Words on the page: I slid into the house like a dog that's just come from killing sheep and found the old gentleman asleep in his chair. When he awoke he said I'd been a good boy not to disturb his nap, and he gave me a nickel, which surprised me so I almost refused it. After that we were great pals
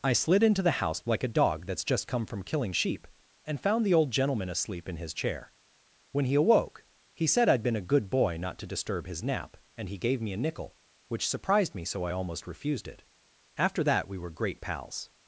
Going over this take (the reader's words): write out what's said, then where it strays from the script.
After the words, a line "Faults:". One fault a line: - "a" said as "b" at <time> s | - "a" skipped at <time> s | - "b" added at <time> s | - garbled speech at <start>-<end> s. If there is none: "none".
I slid into the house like a dog that's just come from killing sheep and found the old gentleman asleep in his chair. When he awoke he said I'd been a good boy not to disturb his nap, and he gave me a nickel, which surprised me so I almost refused it. After that we were great pals
Faults:
none